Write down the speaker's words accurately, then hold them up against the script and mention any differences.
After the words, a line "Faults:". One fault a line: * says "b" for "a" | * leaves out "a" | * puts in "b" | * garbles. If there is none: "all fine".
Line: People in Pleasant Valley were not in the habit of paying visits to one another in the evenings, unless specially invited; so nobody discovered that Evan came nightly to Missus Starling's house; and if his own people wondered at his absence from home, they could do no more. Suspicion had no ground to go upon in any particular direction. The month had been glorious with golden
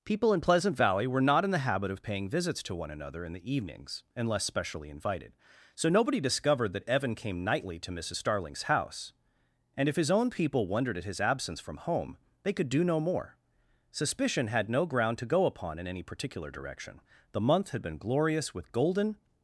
People in Pleasant Valley were not in the habit of paying visits to one another in the evenings, unless specially invited; so nobody discovered that Evan came nightly to Missus Starling's house; and if his own people wondered at his absence from home, they could do no more. Suspicion had no ground to go upon in any particular direction. The month had been glorious with golden
Faults:
all fine